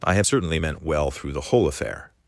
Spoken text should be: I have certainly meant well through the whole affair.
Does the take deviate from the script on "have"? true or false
false